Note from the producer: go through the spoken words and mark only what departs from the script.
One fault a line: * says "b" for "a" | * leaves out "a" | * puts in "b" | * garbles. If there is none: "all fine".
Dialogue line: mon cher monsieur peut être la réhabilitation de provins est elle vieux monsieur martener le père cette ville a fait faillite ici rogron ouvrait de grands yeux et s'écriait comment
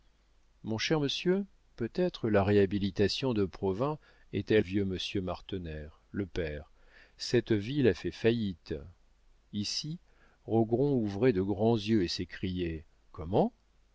all fine